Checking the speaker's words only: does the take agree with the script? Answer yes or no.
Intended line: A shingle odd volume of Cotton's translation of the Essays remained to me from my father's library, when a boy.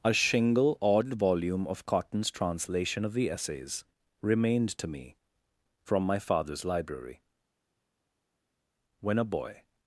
yes